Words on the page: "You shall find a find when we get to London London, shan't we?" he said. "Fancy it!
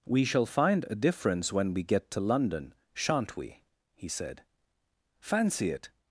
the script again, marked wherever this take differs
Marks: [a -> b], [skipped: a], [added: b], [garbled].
["You -> We] shall find a [find -> difference] when we get to London [skipped: London,] shan't we?" he said. "Fancy it!